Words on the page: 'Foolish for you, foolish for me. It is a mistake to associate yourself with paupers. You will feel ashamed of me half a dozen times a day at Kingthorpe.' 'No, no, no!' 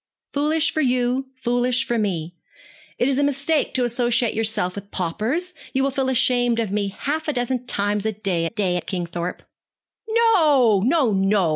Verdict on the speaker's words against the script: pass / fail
fail